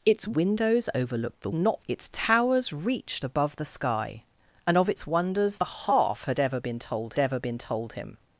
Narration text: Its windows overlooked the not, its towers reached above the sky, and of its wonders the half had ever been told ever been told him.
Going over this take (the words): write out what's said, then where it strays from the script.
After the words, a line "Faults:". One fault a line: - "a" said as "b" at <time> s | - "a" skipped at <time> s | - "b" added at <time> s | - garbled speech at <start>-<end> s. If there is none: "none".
Its windows overlooked the not, its towers reached above the sky, and of its wonders the half had ever been told ever been told him.
Faults:
none